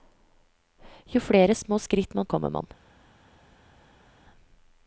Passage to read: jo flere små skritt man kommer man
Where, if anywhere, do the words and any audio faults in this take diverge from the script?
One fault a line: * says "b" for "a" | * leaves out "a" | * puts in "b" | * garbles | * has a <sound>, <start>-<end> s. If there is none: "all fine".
all fine